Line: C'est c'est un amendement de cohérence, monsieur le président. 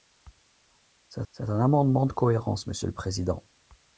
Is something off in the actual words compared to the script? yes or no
no